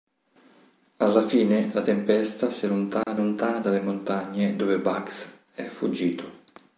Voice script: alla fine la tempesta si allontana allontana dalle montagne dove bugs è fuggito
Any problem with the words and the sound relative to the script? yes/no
yes